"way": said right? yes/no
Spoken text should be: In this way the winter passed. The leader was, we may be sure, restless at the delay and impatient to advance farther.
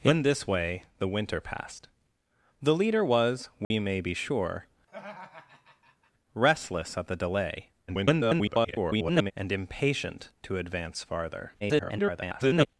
yes